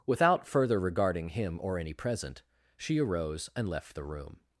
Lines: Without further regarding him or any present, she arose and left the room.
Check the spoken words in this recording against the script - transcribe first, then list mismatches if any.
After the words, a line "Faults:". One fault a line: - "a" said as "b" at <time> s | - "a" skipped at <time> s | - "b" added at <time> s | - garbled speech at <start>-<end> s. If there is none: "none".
Without further regarding him or any present, she arose and left the room.
Faults:
none